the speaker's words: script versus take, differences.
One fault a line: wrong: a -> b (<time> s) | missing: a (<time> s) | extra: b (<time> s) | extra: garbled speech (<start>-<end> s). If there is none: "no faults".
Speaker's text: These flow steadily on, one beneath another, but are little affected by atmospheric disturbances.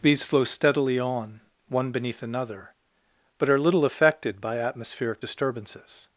no faults